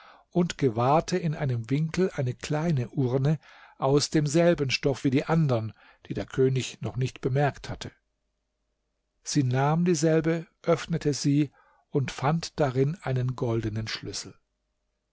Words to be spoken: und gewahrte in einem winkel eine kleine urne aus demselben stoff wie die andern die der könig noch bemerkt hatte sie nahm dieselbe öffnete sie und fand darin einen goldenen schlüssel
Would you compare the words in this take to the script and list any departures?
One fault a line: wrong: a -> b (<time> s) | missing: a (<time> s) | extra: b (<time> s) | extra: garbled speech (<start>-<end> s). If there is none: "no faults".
extra: nicht (6.9 s)